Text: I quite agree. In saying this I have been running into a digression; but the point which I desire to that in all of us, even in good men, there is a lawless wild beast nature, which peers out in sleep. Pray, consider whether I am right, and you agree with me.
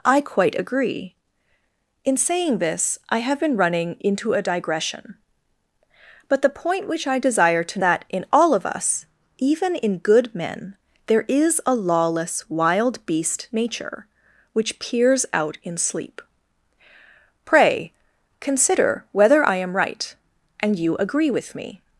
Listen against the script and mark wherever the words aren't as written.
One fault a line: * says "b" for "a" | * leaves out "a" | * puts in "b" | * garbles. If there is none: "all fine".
all fine